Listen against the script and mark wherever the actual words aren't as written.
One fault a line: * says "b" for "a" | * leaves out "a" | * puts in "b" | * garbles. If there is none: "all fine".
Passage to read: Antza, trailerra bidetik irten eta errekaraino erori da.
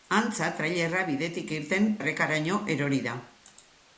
* leaves out "eta"